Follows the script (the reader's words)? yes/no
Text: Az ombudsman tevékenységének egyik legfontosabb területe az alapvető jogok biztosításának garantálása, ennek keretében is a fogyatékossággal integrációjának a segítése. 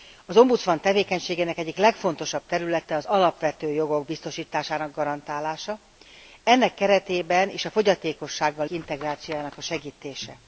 yes